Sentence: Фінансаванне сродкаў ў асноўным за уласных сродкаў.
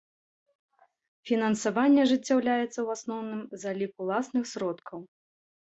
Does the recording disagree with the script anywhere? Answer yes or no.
yes